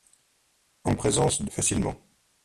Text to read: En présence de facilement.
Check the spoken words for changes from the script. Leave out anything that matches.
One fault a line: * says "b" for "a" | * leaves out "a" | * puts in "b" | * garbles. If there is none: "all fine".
all fine